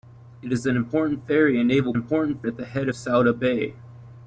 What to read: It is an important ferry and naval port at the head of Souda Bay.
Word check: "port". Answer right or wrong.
wrong